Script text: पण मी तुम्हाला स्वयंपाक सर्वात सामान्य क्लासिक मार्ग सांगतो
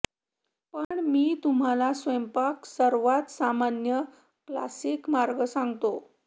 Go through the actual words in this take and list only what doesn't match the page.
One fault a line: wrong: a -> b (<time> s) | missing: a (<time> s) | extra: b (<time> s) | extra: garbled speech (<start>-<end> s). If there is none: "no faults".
no faults